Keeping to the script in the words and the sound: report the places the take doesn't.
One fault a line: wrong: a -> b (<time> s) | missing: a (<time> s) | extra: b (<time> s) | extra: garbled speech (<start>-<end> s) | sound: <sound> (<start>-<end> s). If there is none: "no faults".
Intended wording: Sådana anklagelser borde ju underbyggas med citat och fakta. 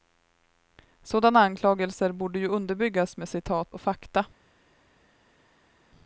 no faults